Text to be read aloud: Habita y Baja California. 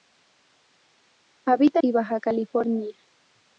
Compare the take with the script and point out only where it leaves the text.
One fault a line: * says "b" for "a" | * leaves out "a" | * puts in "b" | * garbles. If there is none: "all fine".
all fine